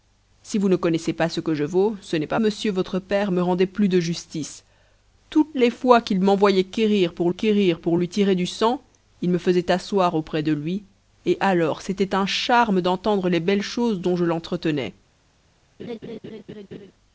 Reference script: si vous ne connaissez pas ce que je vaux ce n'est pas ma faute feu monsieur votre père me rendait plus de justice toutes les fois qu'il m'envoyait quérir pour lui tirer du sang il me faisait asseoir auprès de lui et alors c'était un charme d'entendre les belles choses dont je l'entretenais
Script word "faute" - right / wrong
wrong